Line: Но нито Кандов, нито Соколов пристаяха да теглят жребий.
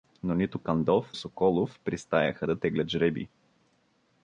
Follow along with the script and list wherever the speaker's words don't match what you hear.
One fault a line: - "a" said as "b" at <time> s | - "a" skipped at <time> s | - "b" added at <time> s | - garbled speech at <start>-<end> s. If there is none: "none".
- "нито" skipped at 1.1 s